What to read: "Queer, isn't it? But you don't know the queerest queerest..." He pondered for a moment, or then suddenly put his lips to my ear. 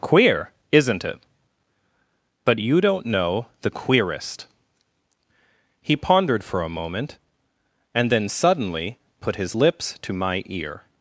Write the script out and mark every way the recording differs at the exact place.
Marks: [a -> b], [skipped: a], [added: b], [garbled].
"Queer, isn't it? But you don't know the queerest [skipped: queerest..."] He pondered for a moment, [or -> and] then suddenly put his lips to my ear.